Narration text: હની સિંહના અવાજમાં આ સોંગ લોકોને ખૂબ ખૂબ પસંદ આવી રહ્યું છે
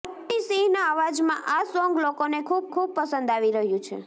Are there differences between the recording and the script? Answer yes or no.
no